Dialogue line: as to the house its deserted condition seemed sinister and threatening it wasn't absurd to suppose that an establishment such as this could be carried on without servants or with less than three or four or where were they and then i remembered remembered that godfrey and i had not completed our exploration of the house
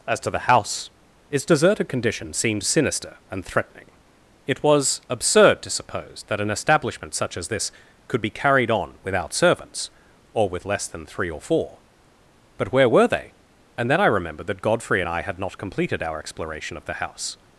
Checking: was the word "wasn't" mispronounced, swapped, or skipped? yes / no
yes